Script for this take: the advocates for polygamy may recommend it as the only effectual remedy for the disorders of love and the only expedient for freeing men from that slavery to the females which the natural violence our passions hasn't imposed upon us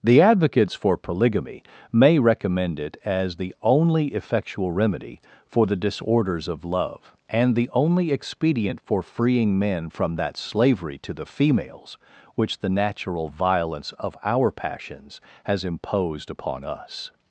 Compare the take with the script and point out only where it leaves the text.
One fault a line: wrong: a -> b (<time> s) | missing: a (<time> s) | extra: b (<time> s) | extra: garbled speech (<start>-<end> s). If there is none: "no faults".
extra: of (14.0 s)
wrong: hasn't -> has (15.4 s)